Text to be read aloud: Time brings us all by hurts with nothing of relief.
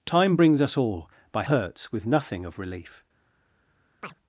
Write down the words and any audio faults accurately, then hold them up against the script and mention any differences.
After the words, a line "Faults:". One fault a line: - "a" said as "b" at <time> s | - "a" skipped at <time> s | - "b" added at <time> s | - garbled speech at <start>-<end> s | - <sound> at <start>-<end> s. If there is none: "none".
Time brings us all by hurts with nothing of relief.
Faults:
- chirp at 4.0-4.1 s